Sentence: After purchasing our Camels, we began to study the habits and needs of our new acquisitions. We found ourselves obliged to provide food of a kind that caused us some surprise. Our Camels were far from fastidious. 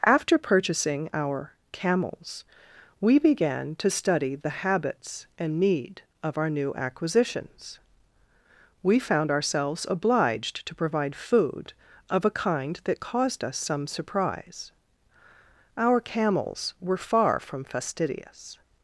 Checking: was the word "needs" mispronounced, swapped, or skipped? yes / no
yes